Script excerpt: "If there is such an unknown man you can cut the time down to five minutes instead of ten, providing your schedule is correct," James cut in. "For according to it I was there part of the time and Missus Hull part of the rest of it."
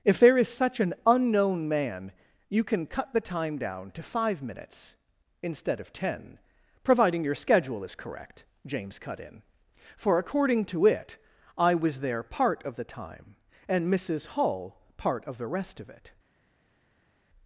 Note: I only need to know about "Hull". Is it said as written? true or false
true